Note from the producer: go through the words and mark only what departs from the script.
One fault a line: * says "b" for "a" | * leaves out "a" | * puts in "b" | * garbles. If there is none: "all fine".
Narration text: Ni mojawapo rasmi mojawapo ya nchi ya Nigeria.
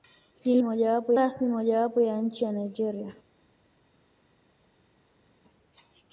all fine